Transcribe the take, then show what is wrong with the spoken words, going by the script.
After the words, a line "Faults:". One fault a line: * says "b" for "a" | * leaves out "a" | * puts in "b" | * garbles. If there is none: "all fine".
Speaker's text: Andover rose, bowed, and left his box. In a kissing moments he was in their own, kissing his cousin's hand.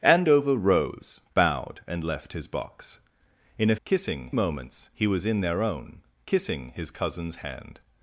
Andover rose, bowed, and left his box. In a kissing moments he was in their own, kissing his cousin's hand.
Faults:
all fine